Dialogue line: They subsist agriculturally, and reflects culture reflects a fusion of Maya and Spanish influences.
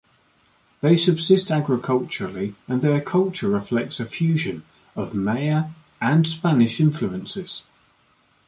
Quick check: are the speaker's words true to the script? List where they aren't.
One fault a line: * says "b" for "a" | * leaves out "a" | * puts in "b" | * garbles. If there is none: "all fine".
* says "their" for "reflects"